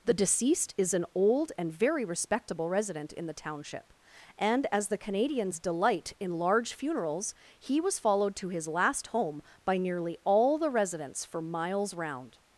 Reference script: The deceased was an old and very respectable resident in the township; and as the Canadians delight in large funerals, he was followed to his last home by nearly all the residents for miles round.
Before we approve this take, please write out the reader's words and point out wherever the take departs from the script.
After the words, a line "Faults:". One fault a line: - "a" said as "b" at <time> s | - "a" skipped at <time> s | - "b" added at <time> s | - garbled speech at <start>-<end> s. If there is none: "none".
The deceased is an old and very respectable resident in the township; and as the Canadians delight in large funerals, he was followed to his last home by nearly all the residents for miles round.
Faults:
- "was" said as "is" at 0.8 s